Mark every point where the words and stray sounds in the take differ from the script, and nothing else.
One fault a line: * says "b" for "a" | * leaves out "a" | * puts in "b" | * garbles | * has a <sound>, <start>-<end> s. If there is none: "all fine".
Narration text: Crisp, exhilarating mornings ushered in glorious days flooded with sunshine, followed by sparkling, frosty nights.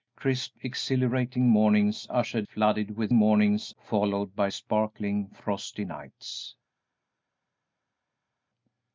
* leaves out "in glorious days"
* says "mornings" for "sunshine"